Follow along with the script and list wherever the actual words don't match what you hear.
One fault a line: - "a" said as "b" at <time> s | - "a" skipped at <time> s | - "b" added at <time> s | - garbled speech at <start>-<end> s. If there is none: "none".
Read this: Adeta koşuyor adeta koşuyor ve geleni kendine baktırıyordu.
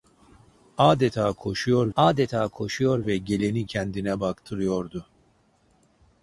none